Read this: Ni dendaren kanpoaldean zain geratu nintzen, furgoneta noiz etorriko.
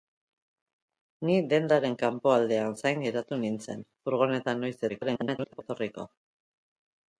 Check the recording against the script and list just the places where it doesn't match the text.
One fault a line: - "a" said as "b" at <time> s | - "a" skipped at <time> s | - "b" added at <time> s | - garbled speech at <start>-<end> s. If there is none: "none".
- garbled speech at 4.9-5.6 s